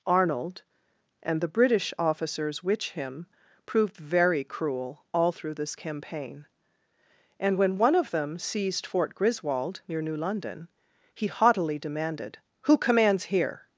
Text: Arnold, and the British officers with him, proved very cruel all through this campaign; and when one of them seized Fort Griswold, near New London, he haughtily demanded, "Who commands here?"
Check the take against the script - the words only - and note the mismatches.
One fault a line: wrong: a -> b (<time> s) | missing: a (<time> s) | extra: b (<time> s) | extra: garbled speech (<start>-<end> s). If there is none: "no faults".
wrong: with -> which (2.6 s)